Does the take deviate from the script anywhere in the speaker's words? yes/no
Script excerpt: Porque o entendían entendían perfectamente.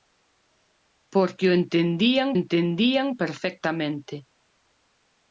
no